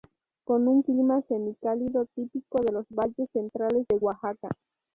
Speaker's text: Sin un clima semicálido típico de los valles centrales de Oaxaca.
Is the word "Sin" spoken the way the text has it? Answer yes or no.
no